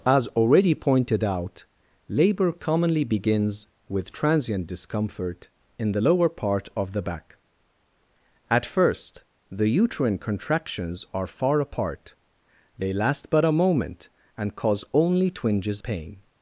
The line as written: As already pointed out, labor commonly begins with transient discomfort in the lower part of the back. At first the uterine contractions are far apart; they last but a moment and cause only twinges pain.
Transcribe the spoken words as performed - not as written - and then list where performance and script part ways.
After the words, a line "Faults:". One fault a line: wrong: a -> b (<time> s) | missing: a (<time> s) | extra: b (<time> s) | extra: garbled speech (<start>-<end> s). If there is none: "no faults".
As already pointed out, labor commonly begins with transient discomfort in the lower part of the back. At first the uterine contractions are far apart; they last but a moment and cause only twinges pain.
Faults:
no faults